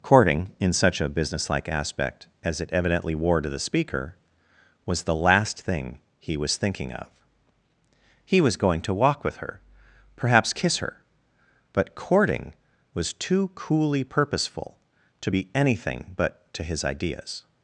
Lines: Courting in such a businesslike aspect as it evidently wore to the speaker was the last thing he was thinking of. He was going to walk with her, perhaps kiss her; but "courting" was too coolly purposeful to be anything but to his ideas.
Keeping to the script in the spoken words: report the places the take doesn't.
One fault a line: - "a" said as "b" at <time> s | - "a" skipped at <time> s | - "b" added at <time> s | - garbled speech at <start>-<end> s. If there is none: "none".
none